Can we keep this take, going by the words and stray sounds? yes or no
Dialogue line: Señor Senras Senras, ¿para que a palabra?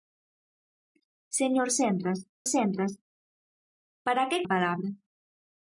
yes